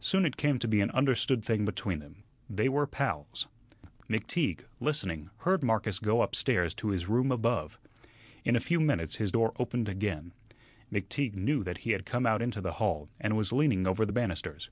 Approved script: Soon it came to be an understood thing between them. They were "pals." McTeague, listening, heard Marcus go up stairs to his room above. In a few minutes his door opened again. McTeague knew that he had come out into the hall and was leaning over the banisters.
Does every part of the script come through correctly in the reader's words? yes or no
yes